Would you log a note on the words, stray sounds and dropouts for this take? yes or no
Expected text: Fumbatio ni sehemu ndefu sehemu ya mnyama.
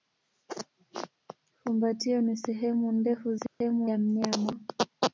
yes